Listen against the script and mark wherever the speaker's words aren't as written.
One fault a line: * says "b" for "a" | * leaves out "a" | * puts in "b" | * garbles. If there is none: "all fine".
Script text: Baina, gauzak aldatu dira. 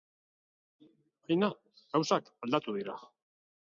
all fine